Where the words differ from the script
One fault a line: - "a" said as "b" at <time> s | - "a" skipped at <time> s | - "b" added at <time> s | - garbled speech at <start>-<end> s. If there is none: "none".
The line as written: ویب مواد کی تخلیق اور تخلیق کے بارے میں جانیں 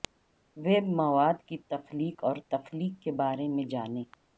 none